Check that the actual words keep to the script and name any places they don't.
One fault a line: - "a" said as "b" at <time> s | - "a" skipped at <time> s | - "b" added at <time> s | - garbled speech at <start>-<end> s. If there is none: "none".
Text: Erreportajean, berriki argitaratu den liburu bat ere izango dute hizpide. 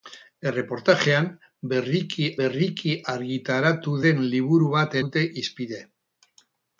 - "berriki" added at 2.4 s
- "ere izango" skipped at 5.0 s